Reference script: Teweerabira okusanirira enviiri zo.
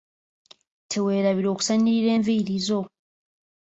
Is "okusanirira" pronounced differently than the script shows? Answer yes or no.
no